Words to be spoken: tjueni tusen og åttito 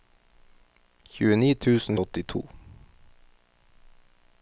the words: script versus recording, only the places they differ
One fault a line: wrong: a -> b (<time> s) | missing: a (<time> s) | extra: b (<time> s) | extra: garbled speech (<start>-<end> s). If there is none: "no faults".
no faults